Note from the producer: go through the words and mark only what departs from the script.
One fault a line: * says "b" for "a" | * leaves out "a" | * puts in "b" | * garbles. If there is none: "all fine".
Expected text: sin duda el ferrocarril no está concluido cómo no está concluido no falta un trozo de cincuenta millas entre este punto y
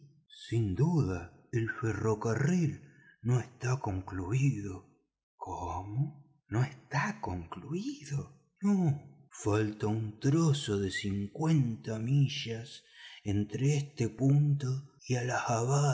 all fine